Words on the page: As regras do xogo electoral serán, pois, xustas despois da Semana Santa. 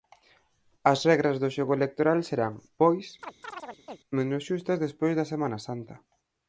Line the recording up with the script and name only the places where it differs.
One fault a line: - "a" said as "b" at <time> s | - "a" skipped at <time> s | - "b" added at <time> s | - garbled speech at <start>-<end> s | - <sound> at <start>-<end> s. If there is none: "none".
- chirp at 3.2-4.0 s
- "menos" added at 4.2 s